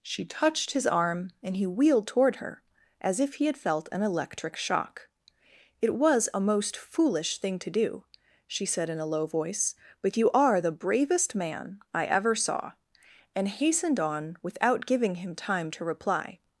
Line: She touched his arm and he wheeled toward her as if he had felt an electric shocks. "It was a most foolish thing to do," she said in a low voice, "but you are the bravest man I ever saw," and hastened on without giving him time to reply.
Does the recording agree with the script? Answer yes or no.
no